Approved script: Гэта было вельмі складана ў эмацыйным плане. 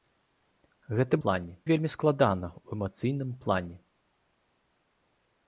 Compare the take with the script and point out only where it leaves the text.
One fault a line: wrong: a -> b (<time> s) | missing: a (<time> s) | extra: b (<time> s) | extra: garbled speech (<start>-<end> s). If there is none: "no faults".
wrong: было -> плане (1.3 s)